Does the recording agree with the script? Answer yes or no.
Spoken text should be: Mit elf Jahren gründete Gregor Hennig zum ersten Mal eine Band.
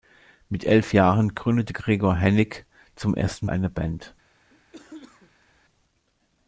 no